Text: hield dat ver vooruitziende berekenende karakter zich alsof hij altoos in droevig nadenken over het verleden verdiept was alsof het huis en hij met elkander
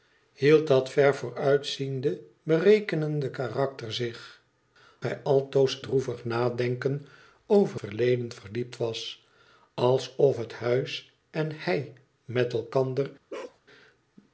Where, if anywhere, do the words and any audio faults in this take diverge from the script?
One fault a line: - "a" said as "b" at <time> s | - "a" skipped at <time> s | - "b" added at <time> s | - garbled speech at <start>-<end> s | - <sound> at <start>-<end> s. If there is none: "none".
- "alsof" skipped at 4.4 s
- "in" skipped at 5.8 s
- "het" skipped at 7.8 s
- bark at 13.3-13.6 s